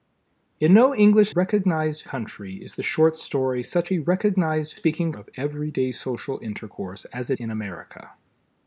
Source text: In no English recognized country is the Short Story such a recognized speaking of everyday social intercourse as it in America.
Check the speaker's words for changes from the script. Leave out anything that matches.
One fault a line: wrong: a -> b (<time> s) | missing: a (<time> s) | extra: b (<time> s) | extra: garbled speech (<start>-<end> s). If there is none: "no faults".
no faults